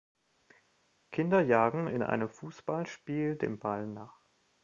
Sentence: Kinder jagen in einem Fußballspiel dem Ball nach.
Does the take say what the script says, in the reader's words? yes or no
yes